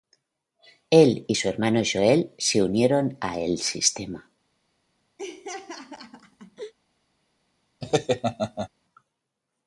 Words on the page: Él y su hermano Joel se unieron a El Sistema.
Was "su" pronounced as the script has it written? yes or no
yes